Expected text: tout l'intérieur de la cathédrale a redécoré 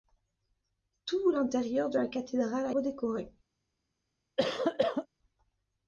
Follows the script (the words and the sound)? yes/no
no